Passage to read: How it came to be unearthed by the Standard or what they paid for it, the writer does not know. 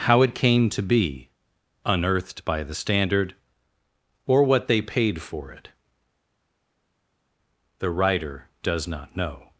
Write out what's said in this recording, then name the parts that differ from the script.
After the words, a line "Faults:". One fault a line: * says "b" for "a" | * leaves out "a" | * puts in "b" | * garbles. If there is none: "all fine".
How it came to be unearthed by the Standard or what they paid for it, the writer does not know.
Faults:
all fine